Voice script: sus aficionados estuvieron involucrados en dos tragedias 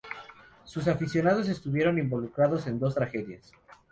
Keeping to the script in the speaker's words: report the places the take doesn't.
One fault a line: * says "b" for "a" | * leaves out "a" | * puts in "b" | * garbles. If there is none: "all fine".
all fine